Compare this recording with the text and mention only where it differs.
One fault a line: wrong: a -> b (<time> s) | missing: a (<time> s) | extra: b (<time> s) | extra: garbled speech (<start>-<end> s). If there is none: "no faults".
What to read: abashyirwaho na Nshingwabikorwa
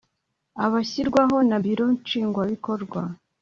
extra: Biro (1.6 s)